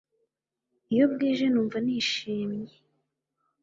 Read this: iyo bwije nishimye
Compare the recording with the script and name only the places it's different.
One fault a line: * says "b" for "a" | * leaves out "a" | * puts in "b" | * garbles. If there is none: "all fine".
* puts in "numva"